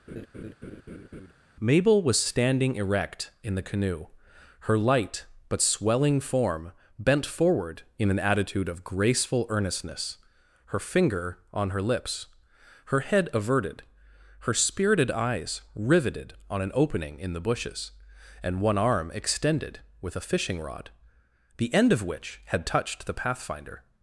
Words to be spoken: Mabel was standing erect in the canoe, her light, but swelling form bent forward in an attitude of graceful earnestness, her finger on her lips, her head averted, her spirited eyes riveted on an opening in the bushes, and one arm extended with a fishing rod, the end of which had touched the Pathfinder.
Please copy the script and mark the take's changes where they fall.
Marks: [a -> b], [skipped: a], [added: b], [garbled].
Mabel was standing erect in the canoe, her light, but swelling form bent forward in an attitude of graceful earnestness, her finger on her lips, her head averted, her spirited eyes riveted on an opening in the bushes, and one arm extended with a fishing rod, the end of which had touched the Pathfinder.